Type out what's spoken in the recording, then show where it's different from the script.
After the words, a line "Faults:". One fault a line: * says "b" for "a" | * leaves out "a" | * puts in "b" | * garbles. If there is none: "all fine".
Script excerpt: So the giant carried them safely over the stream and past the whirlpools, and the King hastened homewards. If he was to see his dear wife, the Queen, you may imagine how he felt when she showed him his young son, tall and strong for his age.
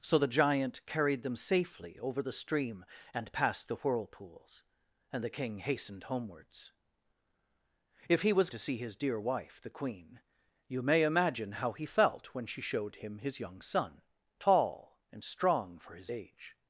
So the giant carried them safely over the stream and past the whirlpools, and the King hastened homewards. If he was to see his dear wife, the Queen, you may imagine how he felt when she showed him his young son, tall and strong for his age.
Faults:
all fine